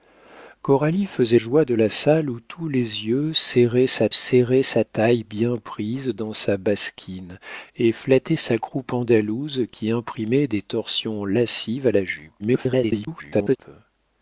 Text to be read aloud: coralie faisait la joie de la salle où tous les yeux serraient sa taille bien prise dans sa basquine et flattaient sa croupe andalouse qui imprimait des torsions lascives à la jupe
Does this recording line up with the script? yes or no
no